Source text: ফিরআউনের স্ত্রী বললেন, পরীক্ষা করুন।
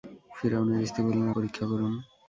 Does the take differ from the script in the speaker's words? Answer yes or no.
no